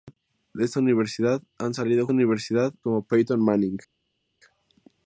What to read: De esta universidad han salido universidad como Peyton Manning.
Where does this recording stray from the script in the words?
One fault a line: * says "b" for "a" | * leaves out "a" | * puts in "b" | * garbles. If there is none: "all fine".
all fine